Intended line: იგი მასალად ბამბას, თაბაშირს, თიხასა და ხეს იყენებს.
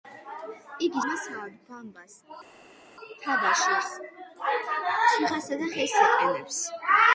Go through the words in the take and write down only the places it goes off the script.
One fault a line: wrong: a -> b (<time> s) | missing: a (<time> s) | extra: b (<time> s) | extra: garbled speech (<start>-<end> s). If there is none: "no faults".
no faults